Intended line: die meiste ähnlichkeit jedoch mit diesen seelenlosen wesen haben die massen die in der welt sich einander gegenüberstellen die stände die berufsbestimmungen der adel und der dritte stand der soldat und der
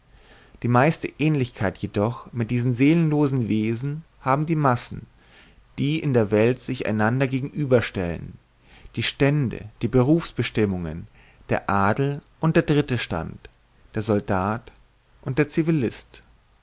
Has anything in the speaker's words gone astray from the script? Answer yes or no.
no